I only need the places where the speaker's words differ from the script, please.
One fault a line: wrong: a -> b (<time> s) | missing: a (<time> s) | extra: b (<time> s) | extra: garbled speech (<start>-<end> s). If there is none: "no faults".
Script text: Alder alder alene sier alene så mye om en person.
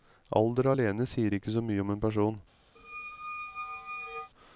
missing: alder (0.7 s)
wrong: alene -> ikke (1.3 s)